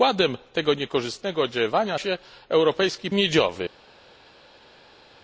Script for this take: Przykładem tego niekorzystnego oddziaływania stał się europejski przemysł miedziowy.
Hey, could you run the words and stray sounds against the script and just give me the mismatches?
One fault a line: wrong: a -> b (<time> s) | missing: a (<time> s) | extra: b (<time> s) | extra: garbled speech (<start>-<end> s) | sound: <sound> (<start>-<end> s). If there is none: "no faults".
missing: stał (2.0 s)
missing: przemysł (3.1 s)